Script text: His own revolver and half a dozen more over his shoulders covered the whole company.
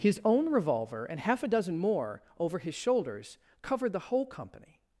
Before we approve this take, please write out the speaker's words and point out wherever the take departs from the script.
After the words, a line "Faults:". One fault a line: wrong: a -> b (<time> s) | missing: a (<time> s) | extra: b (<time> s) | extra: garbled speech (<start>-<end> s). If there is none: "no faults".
His own revolver and half a dozen more over his shoulders covered the whole company.
Faults:
no faults